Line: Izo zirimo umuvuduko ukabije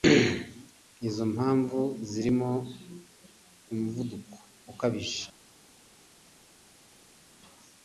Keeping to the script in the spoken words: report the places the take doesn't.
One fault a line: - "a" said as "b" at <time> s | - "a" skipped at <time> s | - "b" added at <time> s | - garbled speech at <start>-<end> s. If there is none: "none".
- "mpamvu" added at 1.3 s